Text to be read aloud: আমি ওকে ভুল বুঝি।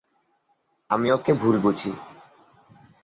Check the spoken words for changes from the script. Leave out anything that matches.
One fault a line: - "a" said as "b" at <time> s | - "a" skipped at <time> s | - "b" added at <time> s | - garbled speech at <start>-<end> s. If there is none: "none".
none